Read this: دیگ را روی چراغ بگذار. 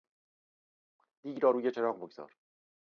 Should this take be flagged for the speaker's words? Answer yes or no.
no